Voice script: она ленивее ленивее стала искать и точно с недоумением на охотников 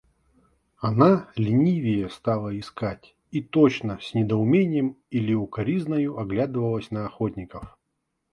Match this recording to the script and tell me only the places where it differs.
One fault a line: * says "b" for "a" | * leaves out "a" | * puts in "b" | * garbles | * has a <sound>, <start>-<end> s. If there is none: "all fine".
* leaves out "ленивее"
* puts in "или укоризною оглядывалась"